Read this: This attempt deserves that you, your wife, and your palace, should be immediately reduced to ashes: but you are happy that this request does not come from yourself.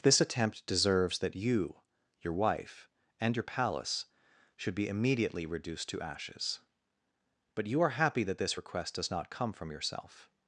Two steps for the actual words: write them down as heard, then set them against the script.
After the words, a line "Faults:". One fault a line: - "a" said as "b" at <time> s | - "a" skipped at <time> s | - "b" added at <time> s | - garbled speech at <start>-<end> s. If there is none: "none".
This attempt deserves that you, your wife, and your palace, should be immediately reduced to ashes: but you are happy that this request does not come from yourself.
Faults:
none